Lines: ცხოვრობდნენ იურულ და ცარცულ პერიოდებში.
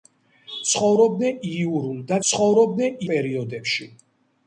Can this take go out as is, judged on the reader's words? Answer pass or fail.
fail